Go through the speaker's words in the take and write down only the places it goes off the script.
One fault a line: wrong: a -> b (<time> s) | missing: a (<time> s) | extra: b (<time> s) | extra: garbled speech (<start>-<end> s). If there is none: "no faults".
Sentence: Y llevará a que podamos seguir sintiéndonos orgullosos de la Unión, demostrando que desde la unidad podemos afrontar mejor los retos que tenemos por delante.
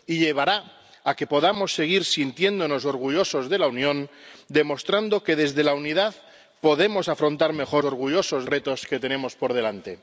wrong: los -> orgullosos (7.8 s)